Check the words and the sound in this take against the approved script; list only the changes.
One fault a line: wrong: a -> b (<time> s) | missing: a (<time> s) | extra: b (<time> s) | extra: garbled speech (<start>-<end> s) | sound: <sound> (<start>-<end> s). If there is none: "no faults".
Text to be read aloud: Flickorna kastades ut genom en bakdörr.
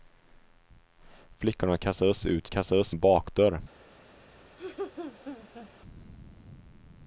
wrong: genom -> kastades (2.5 s)
sound: laugh (4.6-5.7 s)